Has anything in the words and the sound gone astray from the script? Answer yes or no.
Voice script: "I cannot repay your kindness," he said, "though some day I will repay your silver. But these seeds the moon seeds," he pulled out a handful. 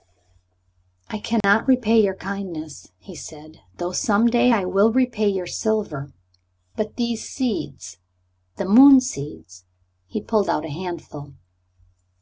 yes